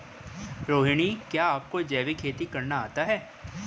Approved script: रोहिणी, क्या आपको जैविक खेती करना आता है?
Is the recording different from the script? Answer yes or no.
no